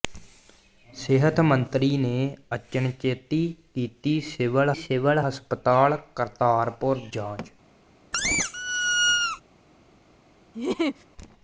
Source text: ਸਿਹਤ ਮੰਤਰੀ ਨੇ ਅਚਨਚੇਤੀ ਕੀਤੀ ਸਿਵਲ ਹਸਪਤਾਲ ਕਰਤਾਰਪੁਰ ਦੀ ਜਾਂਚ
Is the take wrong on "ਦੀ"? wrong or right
wrong